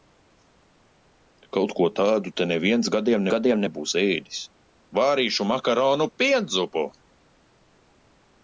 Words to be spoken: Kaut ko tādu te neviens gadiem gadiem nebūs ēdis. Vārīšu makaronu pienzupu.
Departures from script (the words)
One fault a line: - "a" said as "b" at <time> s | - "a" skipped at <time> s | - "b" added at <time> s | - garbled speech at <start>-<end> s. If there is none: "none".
none